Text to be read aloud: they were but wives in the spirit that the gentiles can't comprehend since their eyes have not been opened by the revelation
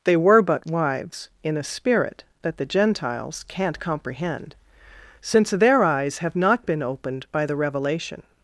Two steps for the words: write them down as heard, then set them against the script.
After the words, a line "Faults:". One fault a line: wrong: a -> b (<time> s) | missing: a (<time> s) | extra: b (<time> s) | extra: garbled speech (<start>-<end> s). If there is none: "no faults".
they were but wives in a spirit that the gentiles can't comprehend since their eyes have not been opened by the revelation
Faults:
wrong: the -> a (1.6 s)